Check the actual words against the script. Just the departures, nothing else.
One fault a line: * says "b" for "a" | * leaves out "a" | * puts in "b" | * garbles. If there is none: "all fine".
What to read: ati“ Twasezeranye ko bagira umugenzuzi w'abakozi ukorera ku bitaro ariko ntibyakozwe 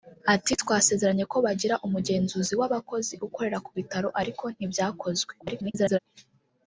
* garbles